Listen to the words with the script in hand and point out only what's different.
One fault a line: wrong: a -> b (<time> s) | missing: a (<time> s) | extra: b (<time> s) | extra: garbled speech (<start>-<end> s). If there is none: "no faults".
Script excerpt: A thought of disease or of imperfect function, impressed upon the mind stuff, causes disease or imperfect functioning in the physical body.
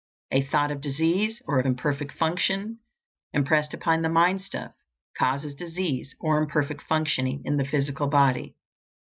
no faults